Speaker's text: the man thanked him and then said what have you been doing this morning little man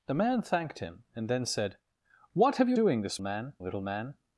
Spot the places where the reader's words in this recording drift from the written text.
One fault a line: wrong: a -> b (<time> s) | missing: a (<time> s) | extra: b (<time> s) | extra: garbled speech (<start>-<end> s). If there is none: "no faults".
missing: been (2.8 s)
wrong: morning -> man (3.2 s)